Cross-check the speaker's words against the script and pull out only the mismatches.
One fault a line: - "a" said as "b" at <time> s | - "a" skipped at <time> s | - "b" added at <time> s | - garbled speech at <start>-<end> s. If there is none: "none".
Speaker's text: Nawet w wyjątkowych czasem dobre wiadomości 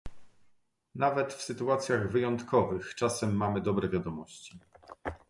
- "sytuacjach" added at 1.4 s
- "mamy" added at 3.4 s